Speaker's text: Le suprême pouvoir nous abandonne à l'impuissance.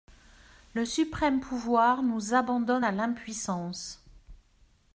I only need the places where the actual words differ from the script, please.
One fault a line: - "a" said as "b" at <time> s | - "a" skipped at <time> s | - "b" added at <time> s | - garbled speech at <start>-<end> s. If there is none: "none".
none